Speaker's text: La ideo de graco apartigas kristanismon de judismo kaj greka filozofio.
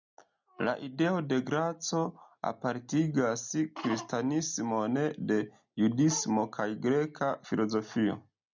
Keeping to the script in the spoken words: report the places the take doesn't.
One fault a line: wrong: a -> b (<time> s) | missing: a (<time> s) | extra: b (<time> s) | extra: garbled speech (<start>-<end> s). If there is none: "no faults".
no faults